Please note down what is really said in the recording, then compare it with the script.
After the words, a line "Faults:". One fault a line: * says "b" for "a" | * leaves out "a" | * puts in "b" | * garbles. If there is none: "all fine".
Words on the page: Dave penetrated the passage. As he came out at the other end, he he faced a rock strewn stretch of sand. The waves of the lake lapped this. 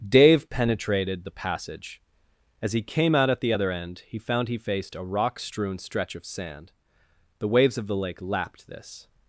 Dave penetrated the passage. As he came out at the other end, he found he faced a rock strewn stretch of sand. The waves of the lake lapped this.
Faults:
* puts in "found"